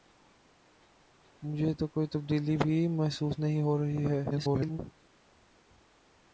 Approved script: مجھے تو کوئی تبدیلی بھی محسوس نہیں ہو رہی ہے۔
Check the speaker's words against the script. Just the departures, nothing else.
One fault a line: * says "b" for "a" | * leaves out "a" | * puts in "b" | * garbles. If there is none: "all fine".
* garbles